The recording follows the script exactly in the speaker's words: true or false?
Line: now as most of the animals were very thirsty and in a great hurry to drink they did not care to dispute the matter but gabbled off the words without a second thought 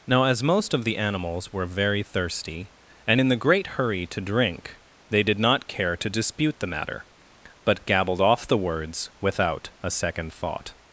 false